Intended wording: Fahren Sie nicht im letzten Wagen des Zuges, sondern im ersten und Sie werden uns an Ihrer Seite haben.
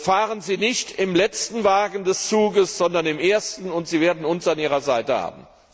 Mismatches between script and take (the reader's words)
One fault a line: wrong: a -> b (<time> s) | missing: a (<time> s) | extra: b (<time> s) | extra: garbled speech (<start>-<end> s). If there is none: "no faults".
no faults